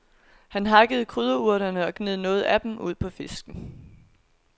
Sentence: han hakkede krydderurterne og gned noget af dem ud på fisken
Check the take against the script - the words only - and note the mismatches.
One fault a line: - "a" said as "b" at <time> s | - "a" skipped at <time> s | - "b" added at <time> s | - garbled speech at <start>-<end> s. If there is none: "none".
none